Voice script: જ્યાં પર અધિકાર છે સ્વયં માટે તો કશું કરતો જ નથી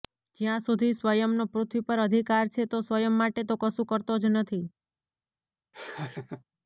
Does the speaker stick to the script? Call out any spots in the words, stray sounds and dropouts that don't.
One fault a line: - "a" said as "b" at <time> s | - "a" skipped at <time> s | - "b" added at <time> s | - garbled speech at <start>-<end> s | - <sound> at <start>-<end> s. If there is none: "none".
- "સુધી સ્વયંનો પૃથ્વી" added at 0.6 s
- "તો" added at 2.7 s
- laugh at 5.7-6.4 s